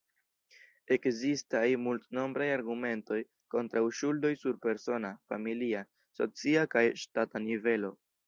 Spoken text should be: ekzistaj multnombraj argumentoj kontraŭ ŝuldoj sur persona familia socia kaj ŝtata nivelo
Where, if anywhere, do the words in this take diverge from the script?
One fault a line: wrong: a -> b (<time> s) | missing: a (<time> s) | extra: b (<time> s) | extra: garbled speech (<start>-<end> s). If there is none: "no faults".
no faults